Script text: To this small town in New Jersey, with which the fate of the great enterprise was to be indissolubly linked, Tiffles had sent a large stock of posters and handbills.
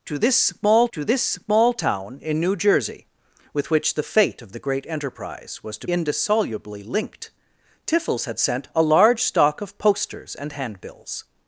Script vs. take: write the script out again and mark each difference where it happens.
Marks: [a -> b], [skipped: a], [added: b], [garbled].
To this small [added: to this small] town in New Jersey, with which the fate of the great enterprise was to [skipped: be] indissolubly linked, Tiffles had sent a large stock of posters and handbills.